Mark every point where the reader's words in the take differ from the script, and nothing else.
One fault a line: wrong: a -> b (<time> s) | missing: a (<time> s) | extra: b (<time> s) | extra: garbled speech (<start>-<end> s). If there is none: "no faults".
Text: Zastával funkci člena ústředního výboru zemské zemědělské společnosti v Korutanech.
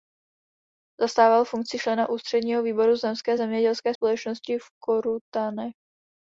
no faults